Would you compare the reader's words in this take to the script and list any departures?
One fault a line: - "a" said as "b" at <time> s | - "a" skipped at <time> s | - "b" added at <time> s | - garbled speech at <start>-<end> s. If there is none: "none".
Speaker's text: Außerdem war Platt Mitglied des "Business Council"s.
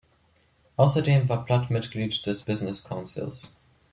none